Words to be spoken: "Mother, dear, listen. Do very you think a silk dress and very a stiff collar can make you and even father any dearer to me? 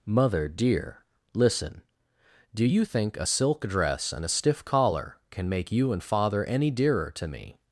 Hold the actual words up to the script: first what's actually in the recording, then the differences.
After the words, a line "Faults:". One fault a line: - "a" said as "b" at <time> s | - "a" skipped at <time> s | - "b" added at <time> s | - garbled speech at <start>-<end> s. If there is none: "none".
"Mother, dear, listen. Do you think a silk dress and a stiff collar can make you and father any dearer to me?
Faults:
- "very" skipped at 2.6 s
- "very" skipped at 4.2 s
- "even" skipped at 6.0 s